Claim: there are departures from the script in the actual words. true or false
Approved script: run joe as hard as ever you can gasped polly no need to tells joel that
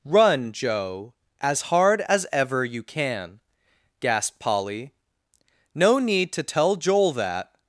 true